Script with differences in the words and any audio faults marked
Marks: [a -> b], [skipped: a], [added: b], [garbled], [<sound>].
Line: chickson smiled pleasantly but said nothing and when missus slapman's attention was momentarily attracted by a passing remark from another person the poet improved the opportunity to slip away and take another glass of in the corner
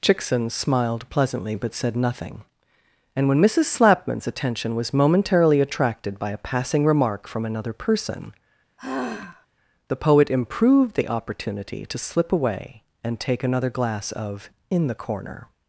chickson smiled pleasantly but said nothing and when missus slapman's attention was momentarily attracted by a passing remark from another person [sigh] the poet improved the opportunity to slip away and take another glass of in the corner